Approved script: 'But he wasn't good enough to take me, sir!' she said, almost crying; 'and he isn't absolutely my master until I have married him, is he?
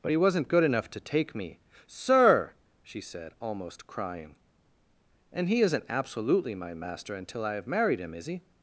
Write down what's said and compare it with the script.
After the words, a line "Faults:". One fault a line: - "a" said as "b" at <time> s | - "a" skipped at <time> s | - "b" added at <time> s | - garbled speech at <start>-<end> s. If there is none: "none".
'But he wasn't good enough to take me, sir!' she said, almost crying; 'and he isn't absolutely my master until I have married him, is he?
Faults:
none